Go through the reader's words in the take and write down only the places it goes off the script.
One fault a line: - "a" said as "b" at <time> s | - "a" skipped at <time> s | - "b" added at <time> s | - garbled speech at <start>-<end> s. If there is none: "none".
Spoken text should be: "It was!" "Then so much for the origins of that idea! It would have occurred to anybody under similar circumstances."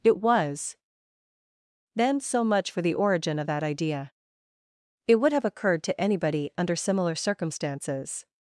- "origins" said as "origin" at 3.0 s